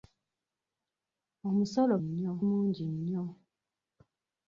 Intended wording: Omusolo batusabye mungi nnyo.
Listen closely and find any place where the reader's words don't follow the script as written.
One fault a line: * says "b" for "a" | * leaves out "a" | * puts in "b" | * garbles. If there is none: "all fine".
* says "nnyo" for "batusabye"